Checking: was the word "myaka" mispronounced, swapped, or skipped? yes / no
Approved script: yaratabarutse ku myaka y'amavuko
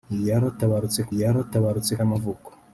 yes